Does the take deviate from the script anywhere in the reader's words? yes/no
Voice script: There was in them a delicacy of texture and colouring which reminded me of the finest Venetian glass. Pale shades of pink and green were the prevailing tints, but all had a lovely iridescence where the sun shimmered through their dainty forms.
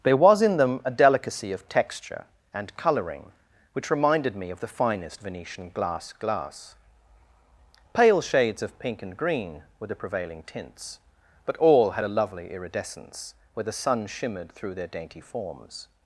yes